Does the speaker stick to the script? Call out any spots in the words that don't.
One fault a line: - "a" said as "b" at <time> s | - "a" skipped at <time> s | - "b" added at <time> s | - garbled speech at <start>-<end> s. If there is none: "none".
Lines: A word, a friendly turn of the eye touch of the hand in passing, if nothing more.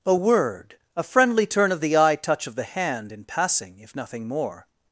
none